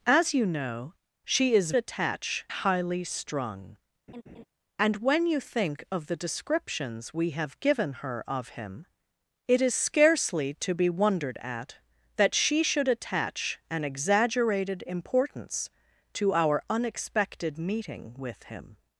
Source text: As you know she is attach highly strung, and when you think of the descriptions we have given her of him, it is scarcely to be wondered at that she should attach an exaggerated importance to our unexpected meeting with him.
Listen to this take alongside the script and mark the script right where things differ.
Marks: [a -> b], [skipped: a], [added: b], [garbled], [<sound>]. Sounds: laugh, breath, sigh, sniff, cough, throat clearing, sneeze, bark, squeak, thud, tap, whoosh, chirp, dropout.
As you know she is attach highly strung, [laugh] and when you think of the descriptions we have given her of him, it is scarcely to be wondered at that she should attach an exaggerated importance to our unexpected meeting with him.